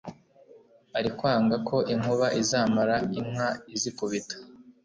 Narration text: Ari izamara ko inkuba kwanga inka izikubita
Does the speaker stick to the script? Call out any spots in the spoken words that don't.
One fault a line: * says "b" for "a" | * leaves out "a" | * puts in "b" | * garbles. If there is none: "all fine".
* says "kwanga" for "izamara"
* says "izamara" for "kwanga"